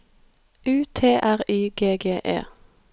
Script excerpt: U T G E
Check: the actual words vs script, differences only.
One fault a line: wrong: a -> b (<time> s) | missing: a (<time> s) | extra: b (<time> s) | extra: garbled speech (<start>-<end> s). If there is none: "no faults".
extra: R Y G (1.2 s)